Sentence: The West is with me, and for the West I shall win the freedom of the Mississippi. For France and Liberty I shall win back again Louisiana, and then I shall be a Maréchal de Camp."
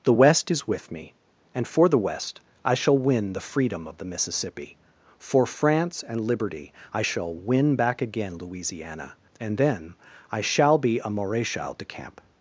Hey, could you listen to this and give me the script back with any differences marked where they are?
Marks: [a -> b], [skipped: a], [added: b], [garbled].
The West is with me, and for the West I shall win the freedom of the Mississippi. For France and Liberty I shall win back again Louisiana, and then I shall be a Maréchal de Camp."